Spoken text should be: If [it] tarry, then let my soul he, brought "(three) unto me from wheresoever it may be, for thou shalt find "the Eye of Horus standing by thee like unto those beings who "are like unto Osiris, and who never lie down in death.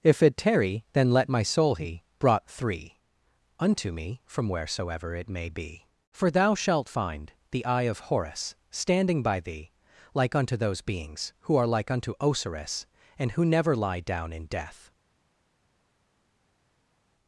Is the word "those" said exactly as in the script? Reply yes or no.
yes